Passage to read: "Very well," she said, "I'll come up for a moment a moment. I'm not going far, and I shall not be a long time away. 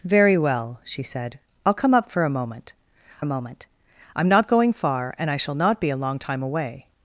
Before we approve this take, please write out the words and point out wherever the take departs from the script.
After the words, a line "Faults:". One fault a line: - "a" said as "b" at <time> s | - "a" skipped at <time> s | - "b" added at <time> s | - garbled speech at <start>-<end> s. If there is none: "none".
"Very well," she said, "I'll come up for a moment a moment. I'm not going far, and I shall not be a long time away.
Faults:
none